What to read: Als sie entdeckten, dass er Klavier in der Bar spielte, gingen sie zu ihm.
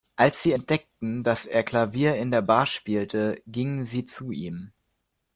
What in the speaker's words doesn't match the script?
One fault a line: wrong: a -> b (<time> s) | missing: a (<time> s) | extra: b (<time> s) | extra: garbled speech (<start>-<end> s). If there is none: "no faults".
no faults